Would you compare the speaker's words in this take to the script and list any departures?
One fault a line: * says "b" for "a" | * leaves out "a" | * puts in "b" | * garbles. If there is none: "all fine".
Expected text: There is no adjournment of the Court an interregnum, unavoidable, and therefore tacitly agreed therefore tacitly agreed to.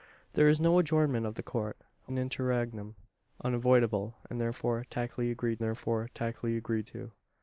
all fine